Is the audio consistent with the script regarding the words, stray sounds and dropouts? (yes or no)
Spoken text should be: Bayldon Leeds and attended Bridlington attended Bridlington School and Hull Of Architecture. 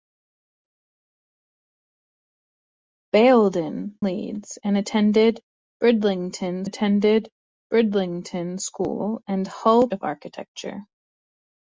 yes